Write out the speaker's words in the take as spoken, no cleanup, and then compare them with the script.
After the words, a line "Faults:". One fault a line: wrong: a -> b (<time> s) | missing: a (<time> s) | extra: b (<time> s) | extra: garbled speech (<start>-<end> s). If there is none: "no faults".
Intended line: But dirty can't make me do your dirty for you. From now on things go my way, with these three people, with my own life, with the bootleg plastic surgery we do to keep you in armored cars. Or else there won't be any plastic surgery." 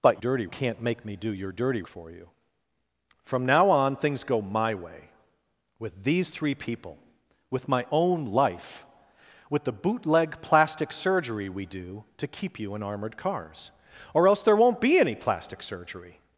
But dirty can't make me do your dirty for you. From now on things go my way, with these three people, with my own life, with the bootleg plastic surgery we do to keep you in armored cars. Or else there won't be any plastic surgery."
Faults:
no faults